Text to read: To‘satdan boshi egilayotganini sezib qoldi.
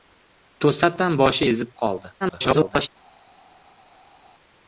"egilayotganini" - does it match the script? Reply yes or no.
no